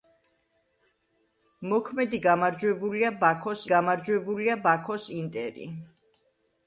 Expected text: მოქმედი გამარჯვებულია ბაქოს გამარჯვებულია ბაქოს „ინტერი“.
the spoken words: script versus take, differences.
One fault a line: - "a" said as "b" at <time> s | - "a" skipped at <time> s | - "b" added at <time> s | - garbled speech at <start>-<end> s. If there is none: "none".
none